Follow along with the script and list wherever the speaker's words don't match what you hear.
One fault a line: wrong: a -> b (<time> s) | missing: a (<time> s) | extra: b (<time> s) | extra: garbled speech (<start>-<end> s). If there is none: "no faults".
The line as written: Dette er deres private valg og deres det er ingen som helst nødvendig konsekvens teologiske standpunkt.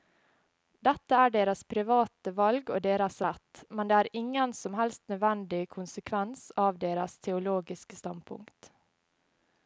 extra: rett men (3.3 s)
extra: av deres (6.7 s)